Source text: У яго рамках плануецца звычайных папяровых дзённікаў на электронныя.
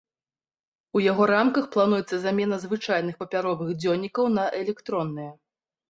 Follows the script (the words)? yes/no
no